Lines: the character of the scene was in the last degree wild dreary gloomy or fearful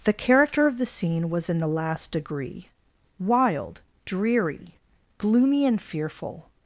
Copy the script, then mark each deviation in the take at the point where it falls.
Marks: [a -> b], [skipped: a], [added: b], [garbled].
the character of the scene was in the last degree wild dreary gloomy [or -> and] fearful